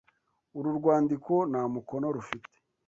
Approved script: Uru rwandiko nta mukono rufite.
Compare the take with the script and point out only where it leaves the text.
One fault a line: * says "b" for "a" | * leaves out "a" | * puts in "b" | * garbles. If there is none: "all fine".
all fine